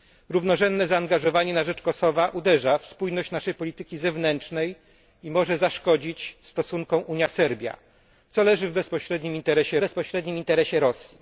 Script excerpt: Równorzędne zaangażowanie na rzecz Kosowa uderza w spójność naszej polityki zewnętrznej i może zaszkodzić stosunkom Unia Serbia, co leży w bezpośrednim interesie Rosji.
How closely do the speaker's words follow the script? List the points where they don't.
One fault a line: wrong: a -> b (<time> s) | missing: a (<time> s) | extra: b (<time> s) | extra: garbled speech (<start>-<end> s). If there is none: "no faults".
extra: bezpośrednim interesie (9.8 s)